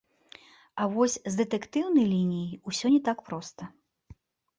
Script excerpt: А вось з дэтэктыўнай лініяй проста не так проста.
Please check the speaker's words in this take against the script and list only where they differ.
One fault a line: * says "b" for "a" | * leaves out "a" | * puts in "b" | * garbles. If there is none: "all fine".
* says "усё" for "проста"